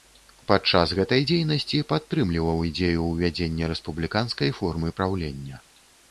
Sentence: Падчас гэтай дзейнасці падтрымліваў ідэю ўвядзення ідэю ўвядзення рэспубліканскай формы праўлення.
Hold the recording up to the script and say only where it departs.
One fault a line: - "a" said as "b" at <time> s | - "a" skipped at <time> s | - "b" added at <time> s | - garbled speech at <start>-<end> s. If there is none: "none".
- "ідэю ўвядзення" skipped at 3.7 s